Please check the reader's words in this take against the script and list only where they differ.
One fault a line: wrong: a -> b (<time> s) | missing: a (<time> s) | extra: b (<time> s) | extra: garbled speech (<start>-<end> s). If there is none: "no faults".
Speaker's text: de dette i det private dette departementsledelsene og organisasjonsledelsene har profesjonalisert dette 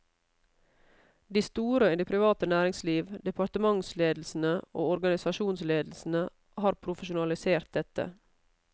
wrong: dette -> store (1.4 s)
wrong: dette -> næringsliv (2.5 s)